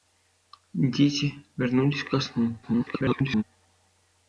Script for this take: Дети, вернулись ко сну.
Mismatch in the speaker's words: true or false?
true